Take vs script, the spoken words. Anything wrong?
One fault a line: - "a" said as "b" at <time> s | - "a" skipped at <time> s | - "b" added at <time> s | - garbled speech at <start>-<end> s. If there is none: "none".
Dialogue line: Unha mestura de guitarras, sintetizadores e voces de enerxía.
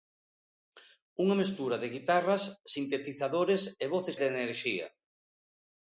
none